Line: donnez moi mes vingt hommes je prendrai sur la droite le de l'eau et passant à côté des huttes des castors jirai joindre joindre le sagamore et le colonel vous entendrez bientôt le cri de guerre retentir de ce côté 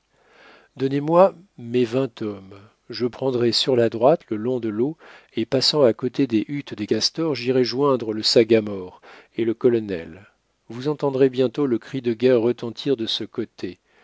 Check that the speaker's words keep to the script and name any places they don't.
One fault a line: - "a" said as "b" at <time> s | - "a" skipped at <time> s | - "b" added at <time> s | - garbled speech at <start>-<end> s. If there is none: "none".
- "long" added at 4.4 s
- "joindre" skipped at 8.1 s